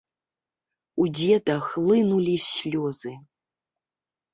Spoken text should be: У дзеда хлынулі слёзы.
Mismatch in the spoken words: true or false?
false